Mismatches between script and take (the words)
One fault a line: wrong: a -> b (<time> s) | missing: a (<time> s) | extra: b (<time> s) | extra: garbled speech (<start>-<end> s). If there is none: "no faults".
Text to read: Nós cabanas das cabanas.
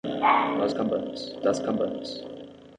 no faults